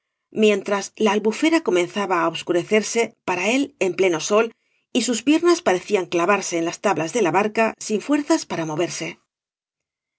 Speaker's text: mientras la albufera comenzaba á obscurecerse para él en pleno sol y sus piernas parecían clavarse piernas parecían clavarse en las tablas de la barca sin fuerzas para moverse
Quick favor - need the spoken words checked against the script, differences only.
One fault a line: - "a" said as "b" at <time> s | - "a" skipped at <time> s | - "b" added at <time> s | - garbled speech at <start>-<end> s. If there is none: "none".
- "piernas parecían clavarse" skipped at 6.5 s